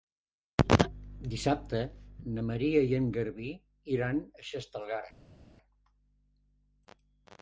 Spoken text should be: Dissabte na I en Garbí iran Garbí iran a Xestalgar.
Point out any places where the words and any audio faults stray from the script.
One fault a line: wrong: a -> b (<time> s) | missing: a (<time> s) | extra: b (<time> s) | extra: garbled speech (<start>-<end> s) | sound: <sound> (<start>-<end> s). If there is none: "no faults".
extra: Maria (2.5 s)
missing: Garbí iran (4.2 s)